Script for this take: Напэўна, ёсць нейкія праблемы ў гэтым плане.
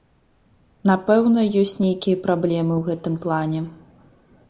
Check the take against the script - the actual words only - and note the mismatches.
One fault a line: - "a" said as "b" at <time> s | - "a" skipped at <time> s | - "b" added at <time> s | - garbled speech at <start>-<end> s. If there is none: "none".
none